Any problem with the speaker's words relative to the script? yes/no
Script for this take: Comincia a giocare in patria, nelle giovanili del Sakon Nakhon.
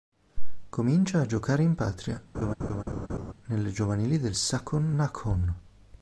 no